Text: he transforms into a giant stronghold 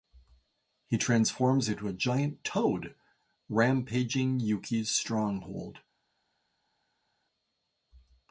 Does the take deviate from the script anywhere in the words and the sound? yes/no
yes